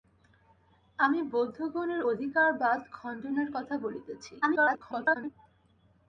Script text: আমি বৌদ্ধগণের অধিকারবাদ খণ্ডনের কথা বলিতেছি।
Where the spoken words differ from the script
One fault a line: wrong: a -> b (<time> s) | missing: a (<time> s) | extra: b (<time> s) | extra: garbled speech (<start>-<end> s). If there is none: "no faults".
extra: garbled speech (4.4-5.3 s)